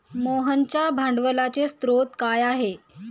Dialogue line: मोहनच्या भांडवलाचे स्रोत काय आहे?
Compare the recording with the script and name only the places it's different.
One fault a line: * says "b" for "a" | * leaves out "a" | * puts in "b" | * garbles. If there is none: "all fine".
all fine